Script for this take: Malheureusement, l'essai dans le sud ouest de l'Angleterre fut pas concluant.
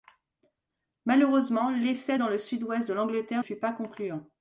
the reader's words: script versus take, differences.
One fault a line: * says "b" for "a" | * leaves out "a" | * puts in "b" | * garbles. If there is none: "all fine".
all fine